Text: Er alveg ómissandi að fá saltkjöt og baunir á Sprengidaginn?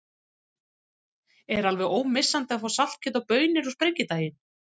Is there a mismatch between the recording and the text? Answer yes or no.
no